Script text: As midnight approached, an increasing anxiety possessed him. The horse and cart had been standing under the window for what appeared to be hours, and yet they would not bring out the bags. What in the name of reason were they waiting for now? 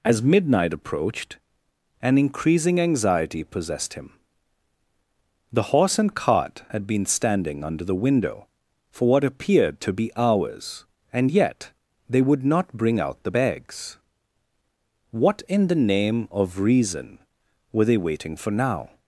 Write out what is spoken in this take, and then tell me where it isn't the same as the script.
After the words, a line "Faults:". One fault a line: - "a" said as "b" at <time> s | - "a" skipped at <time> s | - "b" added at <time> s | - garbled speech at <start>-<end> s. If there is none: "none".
As midnight approached, an increasing anxiety possessed him. The horse and cart had been standing under the window for what appeared to be hours, and yet they would not bring out the bags. What in the name of reason were they waiting for now?
Faults:
none